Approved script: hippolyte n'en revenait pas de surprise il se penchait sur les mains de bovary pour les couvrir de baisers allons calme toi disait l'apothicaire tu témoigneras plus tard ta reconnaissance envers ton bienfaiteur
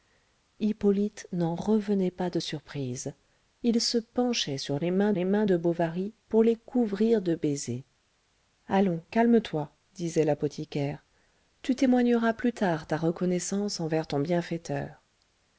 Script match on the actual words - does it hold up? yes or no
no